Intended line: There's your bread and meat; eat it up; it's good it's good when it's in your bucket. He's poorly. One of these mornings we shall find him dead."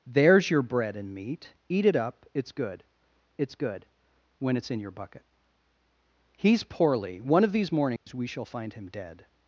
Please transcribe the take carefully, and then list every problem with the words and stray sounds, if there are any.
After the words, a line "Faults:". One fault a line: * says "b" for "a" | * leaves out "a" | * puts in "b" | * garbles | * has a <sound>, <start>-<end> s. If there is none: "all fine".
There's your bread and meat; eat it up; it's good it's good when it's in your bucket. He's poorly. One of these mornings we shall find him dead."
Faults:
* has a dropout, 8.0-8.1 s